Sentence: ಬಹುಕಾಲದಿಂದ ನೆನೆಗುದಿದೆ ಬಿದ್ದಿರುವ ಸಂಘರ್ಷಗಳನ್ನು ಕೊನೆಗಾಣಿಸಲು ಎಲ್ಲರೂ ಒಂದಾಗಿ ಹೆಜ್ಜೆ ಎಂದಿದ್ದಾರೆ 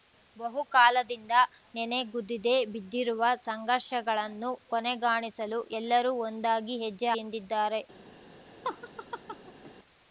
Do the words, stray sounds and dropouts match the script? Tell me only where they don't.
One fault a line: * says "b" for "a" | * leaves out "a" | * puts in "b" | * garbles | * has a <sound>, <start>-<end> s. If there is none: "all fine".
* has a laugh, 8.6-9.7 s